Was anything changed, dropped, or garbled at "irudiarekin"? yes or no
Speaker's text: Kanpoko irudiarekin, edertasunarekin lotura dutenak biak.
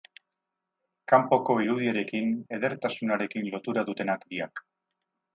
no